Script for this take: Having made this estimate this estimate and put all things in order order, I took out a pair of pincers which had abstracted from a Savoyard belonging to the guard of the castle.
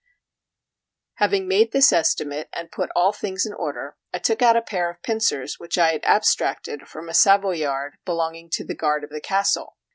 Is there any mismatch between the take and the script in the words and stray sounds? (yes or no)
yes